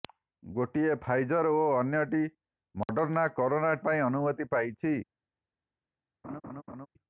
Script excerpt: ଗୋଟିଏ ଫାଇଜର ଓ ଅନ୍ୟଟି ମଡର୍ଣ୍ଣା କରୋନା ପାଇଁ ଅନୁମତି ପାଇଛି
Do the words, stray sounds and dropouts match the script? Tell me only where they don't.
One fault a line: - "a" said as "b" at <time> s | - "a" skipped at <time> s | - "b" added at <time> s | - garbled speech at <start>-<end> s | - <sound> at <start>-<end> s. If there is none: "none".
- dropout at 2.8-2.9 s
- laugh at 6.2-6.9 s